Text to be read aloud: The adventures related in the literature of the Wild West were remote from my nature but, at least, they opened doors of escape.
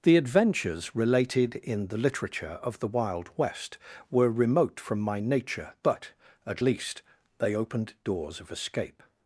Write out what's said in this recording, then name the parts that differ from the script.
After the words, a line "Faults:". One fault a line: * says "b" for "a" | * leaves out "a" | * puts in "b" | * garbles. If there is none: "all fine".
The adventures related in the literature of the Wild West were remote from my nature but, at least, they opened doors of escape.
Faults:
all fine